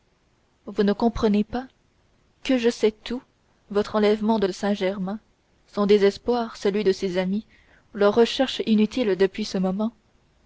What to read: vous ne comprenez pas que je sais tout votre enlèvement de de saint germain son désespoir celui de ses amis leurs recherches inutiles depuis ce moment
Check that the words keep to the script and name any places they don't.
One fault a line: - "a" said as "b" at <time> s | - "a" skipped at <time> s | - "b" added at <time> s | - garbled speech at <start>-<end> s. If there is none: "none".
none